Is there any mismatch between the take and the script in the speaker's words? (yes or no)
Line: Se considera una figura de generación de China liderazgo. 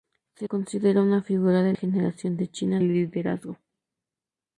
no